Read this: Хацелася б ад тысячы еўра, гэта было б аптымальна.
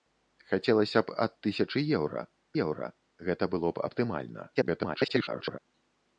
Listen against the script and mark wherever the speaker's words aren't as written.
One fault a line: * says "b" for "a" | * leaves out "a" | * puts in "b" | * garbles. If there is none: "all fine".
* puts in "еўра"
* garbles